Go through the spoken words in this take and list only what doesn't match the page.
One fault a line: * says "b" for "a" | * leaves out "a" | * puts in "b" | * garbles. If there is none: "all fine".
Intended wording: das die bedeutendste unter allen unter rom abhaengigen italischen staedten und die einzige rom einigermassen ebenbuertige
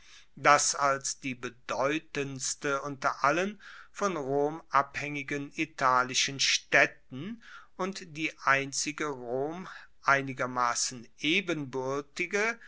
* puts in "als"
* says "von" for "unter"